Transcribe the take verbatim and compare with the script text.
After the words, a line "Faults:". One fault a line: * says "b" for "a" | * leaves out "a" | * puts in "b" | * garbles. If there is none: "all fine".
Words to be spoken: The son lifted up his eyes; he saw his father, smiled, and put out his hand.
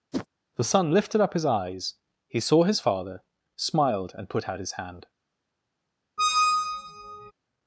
The son lifted up his eyes; he saw his father, smiled, and put out his hand.
Faults:
all fine